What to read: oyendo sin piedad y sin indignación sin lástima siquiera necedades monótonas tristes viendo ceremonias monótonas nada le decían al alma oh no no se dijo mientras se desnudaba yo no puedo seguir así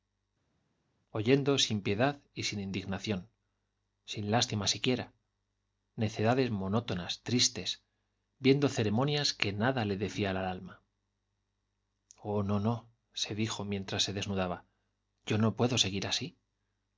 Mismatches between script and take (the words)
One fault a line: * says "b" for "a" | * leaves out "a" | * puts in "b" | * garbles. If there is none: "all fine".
* says "que" for "monótonas"